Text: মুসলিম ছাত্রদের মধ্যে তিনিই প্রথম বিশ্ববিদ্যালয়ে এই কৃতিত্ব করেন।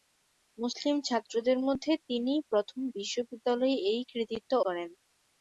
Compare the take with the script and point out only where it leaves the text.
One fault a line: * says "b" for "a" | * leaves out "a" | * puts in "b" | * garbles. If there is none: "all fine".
all fine